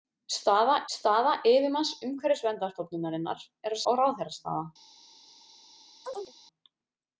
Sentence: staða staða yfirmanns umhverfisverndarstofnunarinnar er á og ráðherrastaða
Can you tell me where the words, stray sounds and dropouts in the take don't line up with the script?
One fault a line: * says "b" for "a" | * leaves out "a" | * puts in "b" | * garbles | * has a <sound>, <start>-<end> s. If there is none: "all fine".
* has a chirp, 6.0-6.3 s